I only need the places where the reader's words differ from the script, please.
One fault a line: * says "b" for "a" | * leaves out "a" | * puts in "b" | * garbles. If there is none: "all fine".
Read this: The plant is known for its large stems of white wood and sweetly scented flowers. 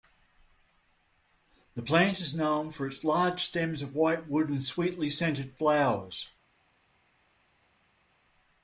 all fine